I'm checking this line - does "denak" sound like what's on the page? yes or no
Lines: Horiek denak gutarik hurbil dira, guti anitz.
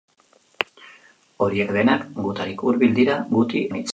yes